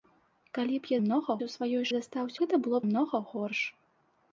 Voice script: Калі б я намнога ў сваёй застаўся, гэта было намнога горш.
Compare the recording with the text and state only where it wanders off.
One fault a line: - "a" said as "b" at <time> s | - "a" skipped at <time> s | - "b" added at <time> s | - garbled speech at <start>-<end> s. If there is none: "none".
none